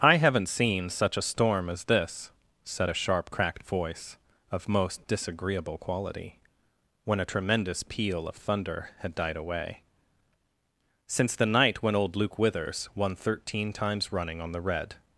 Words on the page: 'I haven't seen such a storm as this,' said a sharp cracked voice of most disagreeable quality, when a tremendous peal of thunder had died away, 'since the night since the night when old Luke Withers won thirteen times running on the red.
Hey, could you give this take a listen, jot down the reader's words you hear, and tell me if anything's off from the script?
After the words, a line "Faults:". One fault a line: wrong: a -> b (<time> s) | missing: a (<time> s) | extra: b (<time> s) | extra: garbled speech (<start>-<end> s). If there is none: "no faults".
'I haven't seen such a storm as this,' said a sharp cracked voice of most disagreeable quality, when a tremendous peal of thunder had died away, 'since the night when old Luke Withers won thirteen times running on the red.
Faults:
missing: since the night (11.8 s)